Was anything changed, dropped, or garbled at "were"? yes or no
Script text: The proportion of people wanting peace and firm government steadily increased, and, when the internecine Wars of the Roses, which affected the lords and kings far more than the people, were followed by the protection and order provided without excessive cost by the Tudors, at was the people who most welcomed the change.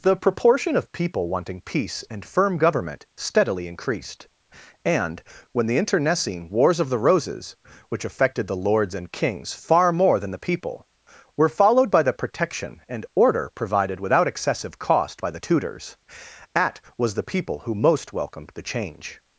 no